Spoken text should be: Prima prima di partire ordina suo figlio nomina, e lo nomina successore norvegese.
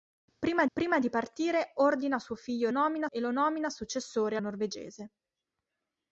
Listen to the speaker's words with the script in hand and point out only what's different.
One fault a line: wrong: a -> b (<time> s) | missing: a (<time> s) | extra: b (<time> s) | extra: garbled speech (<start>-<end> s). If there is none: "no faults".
no faults